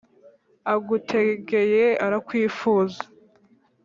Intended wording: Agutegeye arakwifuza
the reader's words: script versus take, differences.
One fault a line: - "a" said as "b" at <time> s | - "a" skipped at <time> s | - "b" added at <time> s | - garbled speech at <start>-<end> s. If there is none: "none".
none